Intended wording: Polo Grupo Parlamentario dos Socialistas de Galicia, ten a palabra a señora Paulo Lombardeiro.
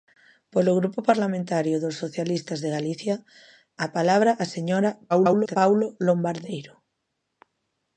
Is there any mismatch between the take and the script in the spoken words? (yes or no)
yes